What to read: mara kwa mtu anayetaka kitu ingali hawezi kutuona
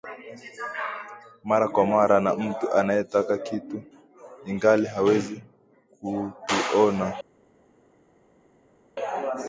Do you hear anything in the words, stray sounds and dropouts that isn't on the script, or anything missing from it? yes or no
yes